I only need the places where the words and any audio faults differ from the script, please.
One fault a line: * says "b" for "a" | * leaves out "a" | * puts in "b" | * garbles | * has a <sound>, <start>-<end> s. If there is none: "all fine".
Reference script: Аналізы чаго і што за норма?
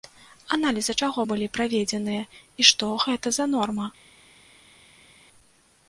* puts in "былі праведзеныя"
* puts in "гэта"